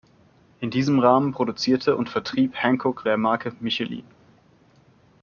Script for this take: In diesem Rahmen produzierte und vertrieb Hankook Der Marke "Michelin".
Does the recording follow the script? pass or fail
pass